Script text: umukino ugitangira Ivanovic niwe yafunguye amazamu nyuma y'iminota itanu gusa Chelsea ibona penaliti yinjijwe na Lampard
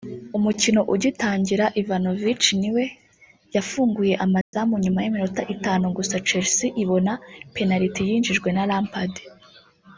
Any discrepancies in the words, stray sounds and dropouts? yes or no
yes